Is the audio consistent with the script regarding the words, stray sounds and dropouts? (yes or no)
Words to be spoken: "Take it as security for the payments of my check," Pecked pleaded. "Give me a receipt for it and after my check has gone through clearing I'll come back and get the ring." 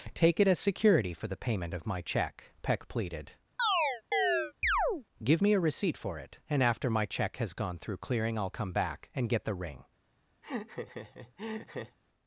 no